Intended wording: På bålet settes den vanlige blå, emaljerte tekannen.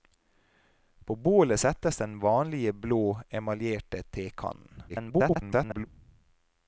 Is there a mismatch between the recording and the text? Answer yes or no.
yes